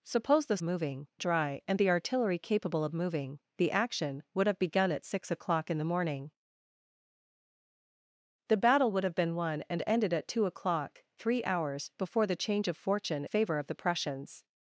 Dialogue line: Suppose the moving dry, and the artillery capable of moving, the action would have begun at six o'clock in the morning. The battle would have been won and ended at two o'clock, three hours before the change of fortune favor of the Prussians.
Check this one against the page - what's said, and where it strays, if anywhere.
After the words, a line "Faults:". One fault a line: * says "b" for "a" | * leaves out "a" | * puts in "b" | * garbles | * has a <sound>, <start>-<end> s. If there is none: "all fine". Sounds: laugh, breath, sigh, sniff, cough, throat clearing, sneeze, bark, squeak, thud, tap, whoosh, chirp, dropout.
Suppose the moving dry, and the artillery capable of moving, the action would have begun at six o'clock in the morning. The battle would have been won and ended at two o'clock, three hours before the change of fortune favor of the Prussians.
Faults:
all fine